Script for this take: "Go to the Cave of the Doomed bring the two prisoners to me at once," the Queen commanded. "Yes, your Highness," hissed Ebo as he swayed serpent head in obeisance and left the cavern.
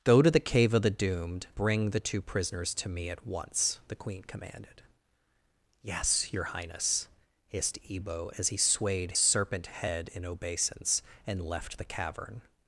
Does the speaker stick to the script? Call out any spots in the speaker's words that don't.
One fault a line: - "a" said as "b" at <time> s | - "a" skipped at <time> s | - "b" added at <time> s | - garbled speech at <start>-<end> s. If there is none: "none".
none